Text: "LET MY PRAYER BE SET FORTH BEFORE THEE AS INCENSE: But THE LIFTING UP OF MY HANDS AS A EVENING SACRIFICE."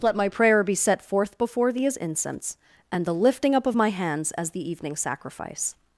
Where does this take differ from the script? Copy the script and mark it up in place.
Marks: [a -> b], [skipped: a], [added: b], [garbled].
"LET MY PRAYER BE SET FORTH BEFORE THEE AS INCENSE: [But -> AND] THE LIFTING UP OF MY HANDS AS [A -> THE] EVENING SACRIFICE."